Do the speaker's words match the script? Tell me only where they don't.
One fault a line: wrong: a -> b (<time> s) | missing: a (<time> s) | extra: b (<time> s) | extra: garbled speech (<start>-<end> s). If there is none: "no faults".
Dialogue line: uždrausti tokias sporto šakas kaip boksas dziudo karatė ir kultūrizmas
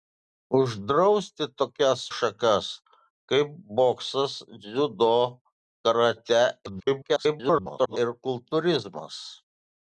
missing: sporto (2.0 s)
extra: garbled speech (6.7-8.0 s)